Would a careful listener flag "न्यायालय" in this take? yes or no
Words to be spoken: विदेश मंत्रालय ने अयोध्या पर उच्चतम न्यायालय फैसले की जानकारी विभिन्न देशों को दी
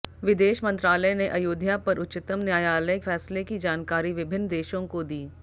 no